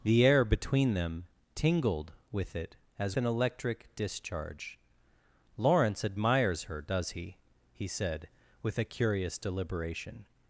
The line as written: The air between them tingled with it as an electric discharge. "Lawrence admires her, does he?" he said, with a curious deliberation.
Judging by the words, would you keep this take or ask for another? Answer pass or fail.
pass